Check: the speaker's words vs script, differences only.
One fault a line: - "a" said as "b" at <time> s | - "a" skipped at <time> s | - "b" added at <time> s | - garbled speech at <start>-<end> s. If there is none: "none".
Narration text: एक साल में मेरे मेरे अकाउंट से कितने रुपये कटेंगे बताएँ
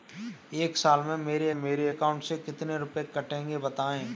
none